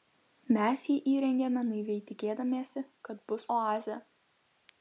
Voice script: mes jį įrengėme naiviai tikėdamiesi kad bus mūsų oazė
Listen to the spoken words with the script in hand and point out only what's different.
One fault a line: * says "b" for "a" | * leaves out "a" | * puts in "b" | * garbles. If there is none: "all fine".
* leaves out "mūsų"